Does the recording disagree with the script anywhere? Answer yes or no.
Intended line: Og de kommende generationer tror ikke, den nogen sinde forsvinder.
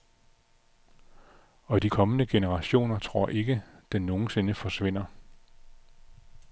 no